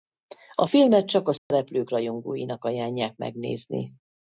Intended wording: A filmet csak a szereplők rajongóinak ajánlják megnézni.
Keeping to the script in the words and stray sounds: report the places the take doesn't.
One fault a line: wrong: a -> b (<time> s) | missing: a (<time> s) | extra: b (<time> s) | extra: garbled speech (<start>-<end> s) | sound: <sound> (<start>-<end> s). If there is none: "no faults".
sound: dropout (1.4-1.5 s)